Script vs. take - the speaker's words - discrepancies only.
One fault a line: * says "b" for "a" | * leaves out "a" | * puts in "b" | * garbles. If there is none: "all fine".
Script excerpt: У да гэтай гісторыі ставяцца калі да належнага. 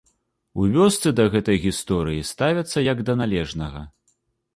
* puts in "вёсцы"
* says "як" for "калі"